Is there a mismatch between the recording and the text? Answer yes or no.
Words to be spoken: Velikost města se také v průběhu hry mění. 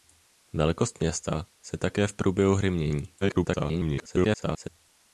yes